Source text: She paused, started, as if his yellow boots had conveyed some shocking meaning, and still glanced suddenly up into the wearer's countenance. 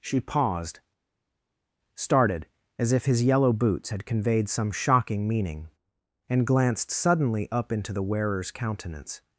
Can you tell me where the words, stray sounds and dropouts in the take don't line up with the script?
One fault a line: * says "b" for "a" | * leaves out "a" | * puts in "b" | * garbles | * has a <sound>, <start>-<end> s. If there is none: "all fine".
* leaves out "still"